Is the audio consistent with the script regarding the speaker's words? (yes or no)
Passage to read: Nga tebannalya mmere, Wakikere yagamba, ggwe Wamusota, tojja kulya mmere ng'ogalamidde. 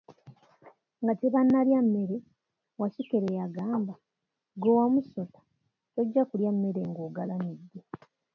yes